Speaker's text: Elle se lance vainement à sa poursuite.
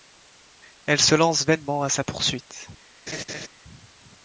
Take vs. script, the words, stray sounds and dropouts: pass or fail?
fail